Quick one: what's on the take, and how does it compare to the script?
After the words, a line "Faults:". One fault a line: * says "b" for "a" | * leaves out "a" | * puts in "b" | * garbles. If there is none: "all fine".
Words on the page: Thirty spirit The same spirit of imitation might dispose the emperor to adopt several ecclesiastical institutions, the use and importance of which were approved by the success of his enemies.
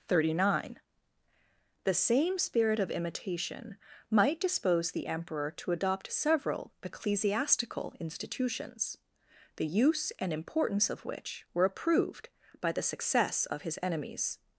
Thirty nine The same spirit of imitation might dispose the emperor to adopt several ecclesiastical institutions, the use and importance of which were approved by the success of his enemies.
Faults:
* says "nine" for "spirit"